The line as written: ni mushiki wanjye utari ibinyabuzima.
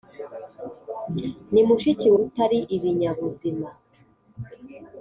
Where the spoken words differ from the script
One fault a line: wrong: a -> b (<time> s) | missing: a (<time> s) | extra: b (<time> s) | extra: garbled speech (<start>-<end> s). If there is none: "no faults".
missing: wanjye (2.1 s)